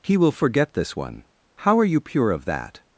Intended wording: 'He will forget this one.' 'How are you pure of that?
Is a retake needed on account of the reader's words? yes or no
no